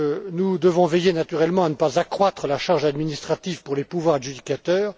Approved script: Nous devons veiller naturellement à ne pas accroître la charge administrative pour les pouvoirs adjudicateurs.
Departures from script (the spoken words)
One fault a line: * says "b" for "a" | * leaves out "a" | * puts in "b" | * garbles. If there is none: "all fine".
all fine